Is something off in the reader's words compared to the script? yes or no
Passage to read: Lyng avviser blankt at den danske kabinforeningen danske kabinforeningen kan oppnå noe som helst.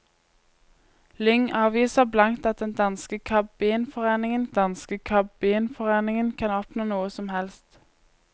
no